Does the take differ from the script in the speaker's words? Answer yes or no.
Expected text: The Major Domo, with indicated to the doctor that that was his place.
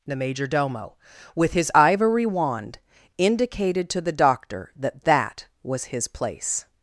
yes